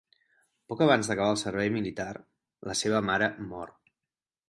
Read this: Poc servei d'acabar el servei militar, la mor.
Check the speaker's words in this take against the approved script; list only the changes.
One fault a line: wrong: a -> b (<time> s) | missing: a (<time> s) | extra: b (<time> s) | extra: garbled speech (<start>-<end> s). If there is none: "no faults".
wrong: servei -> abans (0.8 s)
extra: seva mare (2.8 s)